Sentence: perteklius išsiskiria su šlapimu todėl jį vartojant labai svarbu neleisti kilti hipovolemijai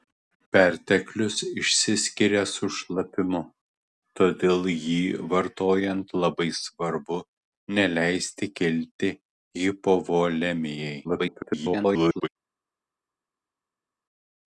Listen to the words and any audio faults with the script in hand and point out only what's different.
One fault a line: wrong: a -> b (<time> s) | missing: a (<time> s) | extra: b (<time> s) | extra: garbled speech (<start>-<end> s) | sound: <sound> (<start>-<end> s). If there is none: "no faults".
extra: garbled speech (11.0-12.3 s)